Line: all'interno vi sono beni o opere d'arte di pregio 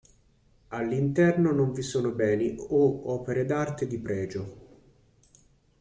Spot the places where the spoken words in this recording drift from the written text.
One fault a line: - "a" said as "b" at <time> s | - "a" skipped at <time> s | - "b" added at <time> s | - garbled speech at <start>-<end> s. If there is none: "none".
- "non" added at 1.5 s